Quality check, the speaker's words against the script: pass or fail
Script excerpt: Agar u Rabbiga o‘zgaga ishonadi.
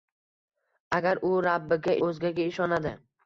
pass